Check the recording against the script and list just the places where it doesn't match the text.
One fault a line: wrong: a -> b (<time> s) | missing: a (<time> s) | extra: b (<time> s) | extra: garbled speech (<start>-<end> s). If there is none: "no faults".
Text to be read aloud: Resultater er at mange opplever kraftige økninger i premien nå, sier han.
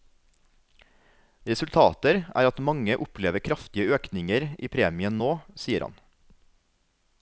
no faults